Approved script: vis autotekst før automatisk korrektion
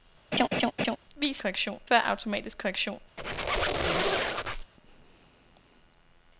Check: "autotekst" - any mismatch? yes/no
yes